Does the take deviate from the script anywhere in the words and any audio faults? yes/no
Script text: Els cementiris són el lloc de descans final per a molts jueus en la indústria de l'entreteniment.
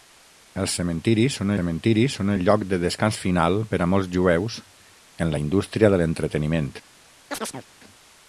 yes